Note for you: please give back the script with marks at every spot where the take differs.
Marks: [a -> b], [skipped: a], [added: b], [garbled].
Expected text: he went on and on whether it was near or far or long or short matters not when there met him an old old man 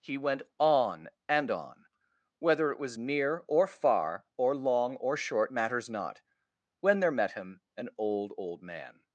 he went on and on whether it was near or far or long or short matters not when there met him an old old man